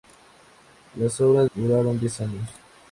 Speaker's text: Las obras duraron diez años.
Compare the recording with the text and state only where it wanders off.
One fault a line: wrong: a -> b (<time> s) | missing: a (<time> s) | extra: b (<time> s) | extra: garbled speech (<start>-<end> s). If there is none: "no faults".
no faults